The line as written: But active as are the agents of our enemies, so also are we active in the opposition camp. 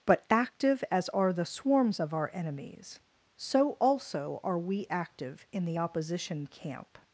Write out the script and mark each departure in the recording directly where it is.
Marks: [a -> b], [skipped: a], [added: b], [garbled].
But active as are the [agents -> swarms] of our enemies, so also are we active in the opposition camp.